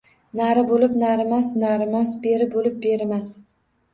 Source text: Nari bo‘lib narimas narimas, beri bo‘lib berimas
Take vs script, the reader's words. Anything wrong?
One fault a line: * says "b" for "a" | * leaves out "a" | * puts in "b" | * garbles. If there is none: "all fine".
all fine